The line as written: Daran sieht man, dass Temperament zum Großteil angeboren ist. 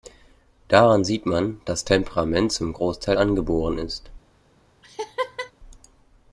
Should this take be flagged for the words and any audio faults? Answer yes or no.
yes